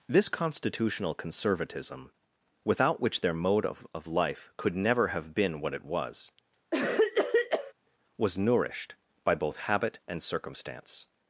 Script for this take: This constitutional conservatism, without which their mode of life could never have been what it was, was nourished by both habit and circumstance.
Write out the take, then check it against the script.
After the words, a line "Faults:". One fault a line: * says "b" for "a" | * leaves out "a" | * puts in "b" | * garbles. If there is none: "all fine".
This constitutional conservatism, without which their mode of of life could never have been what it was, was nourished by both habit and circumstance.
Faults:
* puts in "of"